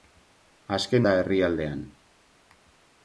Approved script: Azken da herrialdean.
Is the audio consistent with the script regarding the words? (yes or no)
yes